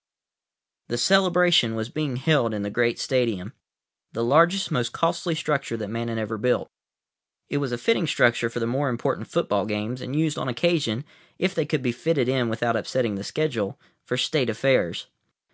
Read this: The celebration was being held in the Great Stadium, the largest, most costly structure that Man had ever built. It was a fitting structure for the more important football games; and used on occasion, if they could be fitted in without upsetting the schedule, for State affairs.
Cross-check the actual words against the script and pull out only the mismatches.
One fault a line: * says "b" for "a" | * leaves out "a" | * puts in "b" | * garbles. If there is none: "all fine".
all fine